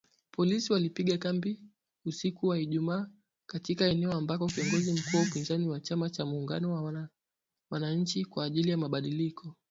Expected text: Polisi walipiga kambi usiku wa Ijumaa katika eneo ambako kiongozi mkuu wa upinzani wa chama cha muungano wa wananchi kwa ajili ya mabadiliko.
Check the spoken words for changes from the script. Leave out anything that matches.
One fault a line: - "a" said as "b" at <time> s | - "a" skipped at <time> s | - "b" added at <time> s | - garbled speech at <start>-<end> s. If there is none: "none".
none